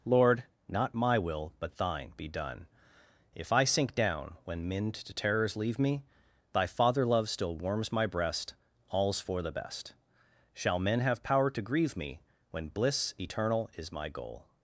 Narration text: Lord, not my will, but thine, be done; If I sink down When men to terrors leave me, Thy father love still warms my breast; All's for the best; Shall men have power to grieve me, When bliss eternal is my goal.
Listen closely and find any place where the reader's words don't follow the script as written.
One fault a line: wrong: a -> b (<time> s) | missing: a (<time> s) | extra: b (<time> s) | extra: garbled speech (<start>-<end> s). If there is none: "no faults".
no faults